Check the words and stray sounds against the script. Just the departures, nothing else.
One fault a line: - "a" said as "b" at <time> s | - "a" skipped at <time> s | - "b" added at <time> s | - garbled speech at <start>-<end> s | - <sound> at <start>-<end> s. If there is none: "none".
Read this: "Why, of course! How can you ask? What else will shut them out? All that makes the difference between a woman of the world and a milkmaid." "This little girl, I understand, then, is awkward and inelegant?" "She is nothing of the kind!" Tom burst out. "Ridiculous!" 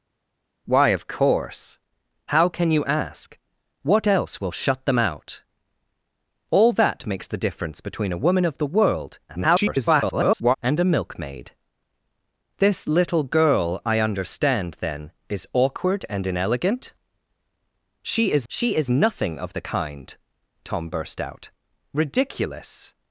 - garbled speech at 9.3-10.6 s
- "she is" added at 18.5 s